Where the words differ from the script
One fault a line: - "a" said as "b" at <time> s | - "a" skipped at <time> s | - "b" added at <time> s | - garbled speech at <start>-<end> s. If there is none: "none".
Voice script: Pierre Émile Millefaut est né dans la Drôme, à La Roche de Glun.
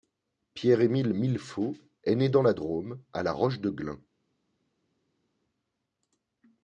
none